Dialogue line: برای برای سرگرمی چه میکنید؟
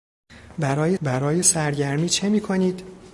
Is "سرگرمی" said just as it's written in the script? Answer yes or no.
yes